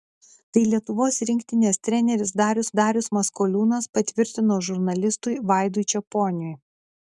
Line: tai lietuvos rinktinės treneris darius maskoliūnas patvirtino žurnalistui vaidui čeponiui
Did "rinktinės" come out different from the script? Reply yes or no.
no